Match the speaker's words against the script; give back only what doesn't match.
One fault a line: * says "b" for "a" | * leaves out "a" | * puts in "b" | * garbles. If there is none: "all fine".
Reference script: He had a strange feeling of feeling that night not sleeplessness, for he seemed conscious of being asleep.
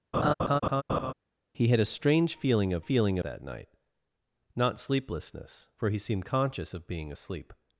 all fine